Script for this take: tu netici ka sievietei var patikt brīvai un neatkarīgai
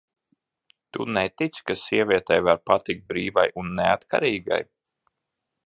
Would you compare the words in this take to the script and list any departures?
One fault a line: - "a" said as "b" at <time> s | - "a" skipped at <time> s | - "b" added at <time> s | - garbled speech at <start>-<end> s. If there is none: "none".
none